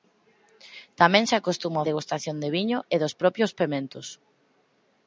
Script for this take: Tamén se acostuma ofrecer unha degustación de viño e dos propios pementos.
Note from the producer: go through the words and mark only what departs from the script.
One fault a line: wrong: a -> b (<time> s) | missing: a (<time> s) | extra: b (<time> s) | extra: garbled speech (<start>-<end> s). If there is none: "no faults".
missing: ofrecer unha (1.9 s)